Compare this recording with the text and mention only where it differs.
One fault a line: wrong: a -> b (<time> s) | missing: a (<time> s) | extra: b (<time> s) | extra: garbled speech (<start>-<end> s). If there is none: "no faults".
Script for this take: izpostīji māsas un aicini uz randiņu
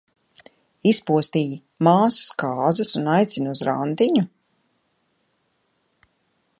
extra: kāzas (2.4 s)